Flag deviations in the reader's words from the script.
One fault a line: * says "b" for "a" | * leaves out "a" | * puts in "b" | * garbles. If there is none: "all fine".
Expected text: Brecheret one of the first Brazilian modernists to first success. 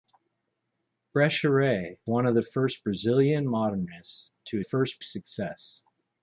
all fine